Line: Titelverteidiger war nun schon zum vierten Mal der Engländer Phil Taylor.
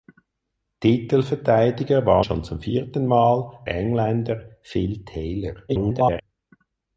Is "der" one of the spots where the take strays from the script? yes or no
yes